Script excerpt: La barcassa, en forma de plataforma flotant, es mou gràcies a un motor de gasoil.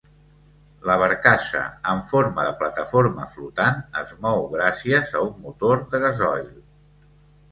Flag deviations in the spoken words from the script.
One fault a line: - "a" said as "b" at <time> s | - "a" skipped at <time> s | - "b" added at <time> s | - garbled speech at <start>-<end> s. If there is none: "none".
none